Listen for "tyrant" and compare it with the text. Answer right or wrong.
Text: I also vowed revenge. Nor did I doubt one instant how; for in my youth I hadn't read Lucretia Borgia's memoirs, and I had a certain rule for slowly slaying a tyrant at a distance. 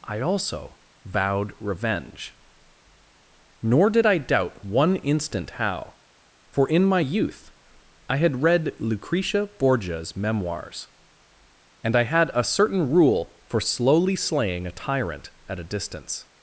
right